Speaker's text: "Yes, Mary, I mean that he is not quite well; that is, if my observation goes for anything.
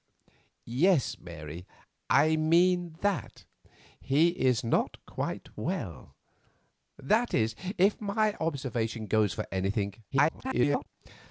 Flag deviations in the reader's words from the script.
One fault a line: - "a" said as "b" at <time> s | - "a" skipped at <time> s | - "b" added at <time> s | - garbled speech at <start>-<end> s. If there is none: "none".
- garbled speech at 10.1-10.9 s